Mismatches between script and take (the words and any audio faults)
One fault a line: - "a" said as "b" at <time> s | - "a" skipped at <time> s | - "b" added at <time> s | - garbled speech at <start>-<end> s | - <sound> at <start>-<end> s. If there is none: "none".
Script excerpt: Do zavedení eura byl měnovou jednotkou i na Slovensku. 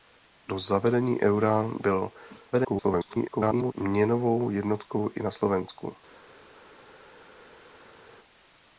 - garbled speech at 2.5-3.7 s